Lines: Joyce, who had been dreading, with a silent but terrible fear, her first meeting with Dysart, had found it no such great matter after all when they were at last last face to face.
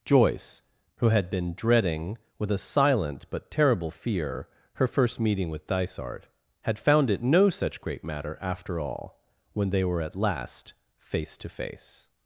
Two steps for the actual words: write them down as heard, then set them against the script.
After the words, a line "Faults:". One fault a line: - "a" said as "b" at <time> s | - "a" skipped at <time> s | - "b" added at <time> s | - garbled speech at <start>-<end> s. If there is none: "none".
Joyce, who had been dreading, with a silent but terrible fear, her first meeting with Dysart, had found it no such great matter after all when they were at last face to face.
Faults:
- "last" skipped at 10.7 s